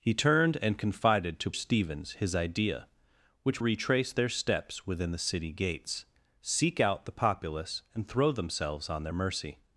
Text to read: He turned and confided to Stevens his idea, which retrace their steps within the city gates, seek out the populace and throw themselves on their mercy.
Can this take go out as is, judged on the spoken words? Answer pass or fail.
pass